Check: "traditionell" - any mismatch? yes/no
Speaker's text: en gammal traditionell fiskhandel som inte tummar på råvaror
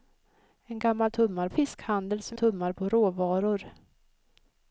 yes